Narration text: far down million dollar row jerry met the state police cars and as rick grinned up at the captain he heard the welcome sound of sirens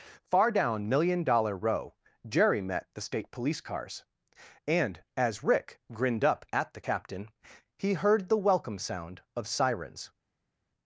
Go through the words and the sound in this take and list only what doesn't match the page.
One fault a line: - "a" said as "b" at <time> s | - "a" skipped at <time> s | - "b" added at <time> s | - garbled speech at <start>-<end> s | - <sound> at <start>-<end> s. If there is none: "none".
none